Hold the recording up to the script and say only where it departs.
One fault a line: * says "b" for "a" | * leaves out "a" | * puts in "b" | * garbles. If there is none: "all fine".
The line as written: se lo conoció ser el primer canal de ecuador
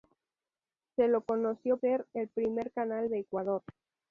all fine